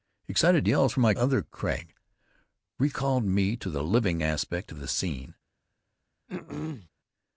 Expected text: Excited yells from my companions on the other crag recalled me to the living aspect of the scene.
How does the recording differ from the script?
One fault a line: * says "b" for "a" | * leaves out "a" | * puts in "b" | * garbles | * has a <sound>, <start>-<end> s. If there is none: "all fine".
* leaves out "companions on the"
* has a throat clearing, 6.3-6.9 s